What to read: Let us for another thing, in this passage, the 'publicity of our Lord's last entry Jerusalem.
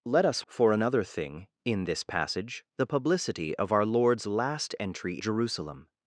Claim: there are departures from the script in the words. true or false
false